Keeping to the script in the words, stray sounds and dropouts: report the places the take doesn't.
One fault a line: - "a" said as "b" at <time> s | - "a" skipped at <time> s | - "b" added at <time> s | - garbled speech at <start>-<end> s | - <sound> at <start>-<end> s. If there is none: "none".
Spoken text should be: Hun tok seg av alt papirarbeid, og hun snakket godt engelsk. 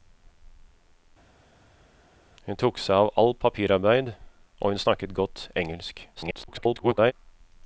- garbled speech at 6.2-7.1 s